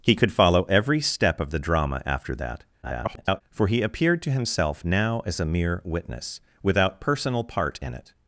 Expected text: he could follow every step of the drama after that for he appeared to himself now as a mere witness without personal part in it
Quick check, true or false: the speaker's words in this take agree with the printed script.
false